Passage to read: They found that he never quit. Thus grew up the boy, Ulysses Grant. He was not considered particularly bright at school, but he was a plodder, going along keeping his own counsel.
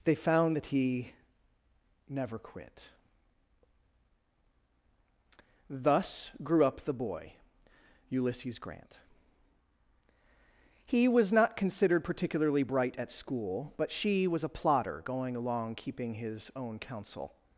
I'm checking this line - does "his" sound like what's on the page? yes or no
yes